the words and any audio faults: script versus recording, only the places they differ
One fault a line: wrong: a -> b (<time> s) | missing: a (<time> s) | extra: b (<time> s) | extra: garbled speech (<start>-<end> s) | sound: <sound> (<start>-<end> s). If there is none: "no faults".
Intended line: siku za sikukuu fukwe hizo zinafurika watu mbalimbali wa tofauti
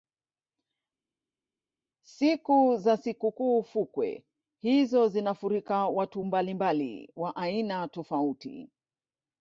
extra: aina (7.4 s)